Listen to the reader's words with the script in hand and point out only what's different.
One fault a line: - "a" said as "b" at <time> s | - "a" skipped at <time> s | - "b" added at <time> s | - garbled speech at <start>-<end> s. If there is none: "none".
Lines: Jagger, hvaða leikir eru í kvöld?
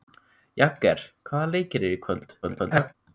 - garbled speech at 2.4-2.9 s